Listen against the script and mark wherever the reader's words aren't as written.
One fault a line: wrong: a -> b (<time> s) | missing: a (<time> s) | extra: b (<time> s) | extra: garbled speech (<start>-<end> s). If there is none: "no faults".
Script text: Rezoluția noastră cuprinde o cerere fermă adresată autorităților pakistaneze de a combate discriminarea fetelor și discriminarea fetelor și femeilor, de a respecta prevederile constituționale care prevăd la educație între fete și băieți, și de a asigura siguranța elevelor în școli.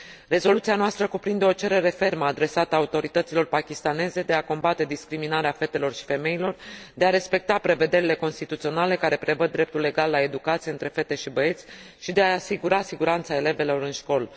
missing: discriminarea fetelor și (6.0 s)
extra: dreptul egal (9.5 s)